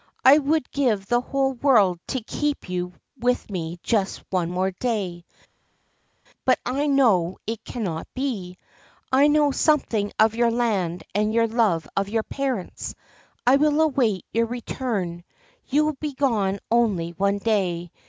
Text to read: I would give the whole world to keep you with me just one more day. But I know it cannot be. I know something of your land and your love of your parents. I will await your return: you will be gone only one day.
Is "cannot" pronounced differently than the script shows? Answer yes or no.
no